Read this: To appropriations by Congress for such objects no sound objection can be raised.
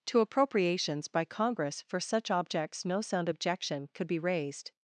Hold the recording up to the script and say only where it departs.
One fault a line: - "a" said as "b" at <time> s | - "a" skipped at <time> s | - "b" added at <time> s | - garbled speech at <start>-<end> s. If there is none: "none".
- "can" said as "could" at 3.9 s